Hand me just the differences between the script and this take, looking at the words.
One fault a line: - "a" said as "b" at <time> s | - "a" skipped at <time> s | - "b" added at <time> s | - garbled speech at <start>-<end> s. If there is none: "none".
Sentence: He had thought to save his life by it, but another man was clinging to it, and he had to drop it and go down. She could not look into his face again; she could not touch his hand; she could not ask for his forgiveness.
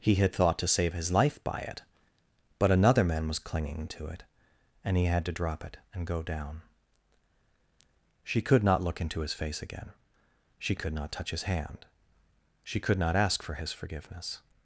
none